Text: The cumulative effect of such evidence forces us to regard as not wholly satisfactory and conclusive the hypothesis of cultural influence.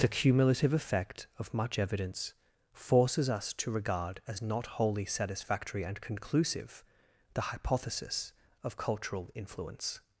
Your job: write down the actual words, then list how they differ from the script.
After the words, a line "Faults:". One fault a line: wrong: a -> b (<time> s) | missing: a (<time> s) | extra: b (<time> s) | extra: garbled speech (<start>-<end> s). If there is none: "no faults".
The cumulative effect of much evidence forces us to regard as not wholly satisfactory and conclusive the hypothesis of cultural influence.
Faults:
wrong: such -> much (1.5 s)